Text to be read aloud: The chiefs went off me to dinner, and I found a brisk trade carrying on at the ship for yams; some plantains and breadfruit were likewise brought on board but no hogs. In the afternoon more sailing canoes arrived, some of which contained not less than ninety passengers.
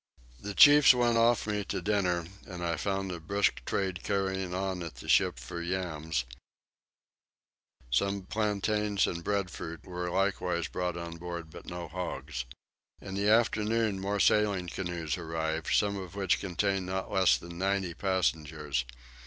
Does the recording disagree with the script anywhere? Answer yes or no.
no